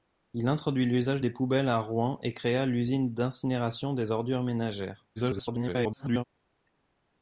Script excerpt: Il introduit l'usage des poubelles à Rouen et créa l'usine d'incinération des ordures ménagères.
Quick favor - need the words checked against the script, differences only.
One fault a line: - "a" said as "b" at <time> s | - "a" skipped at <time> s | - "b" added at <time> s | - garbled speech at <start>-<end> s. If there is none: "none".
- garbled speech at 5.2-6.2 s